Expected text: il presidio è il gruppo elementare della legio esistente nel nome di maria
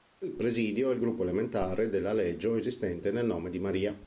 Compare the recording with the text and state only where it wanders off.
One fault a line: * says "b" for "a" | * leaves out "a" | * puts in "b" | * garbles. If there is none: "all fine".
all fine